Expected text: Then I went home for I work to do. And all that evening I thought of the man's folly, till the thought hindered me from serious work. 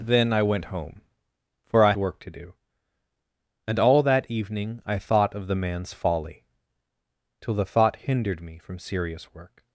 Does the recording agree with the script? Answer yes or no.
yes